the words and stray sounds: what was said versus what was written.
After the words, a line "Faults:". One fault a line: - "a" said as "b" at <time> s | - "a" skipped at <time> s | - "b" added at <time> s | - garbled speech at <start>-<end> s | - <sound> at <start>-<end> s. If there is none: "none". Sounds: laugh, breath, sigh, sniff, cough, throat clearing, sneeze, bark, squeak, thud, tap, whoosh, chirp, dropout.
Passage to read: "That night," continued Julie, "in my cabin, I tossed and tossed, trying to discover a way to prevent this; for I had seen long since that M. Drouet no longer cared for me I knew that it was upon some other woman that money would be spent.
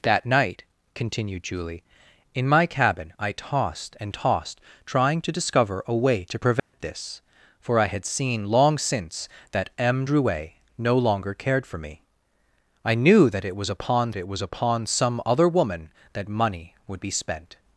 "That night," continued Julie, "in my cabin, I tossed and tossed, trying to discover a way to prevent this; for I had seen long since that M. Drouet no longer cared for me I knew that it was upon it was upon some other woman that money would be spent.
Faults:
- dropout at 6.6-6.7 s
- "it was upon" added at 14.2 s